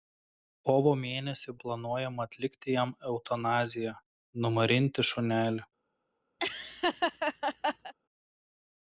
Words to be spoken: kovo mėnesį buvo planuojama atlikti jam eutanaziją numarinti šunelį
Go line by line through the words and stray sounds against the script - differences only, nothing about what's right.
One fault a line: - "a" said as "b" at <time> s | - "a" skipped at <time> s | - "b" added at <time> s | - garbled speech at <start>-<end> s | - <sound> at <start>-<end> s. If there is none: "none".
- "buvo" skipped at 1.5 s
- laugh at 6.4-7.9 s